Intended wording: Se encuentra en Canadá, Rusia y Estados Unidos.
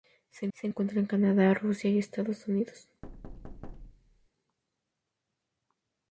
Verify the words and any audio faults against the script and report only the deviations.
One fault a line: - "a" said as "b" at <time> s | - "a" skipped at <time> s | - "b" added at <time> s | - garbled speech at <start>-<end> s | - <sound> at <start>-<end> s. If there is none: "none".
- "se" added at 0.5 s
- thud at 3.0-4.3 s